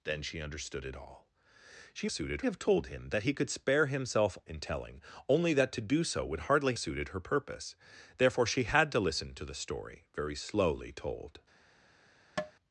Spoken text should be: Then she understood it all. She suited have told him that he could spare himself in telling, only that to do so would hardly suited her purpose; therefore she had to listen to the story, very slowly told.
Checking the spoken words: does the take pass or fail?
pass